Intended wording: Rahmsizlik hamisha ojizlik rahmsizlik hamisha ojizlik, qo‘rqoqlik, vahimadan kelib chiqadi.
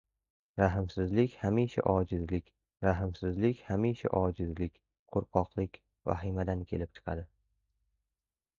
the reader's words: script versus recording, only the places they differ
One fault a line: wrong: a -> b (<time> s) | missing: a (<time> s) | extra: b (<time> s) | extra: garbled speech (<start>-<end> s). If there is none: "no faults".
no faults